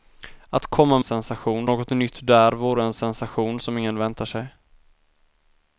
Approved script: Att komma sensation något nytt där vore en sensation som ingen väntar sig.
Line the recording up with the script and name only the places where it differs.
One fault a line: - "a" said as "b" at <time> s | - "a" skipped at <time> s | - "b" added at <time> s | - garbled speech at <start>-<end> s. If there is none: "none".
none